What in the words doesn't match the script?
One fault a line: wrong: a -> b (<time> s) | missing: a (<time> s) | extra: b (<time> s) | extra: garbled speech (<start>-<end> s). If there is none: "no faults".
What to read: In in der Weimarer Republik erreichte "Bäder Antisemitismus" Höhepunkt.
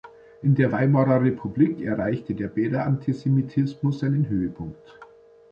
missing: in (0.6 s)
extra: der (2.3 s)
extra: seinen (4.0 s)